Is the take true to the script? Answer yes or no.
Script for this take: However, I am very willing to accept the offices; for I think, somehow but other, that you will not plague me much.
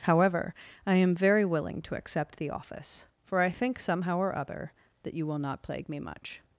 no